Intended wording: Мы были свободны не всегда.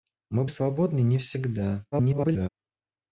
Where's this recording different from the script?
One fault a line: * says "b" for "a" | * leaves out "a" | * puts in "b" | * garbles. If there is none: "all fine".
* leaves out "были"
* garbles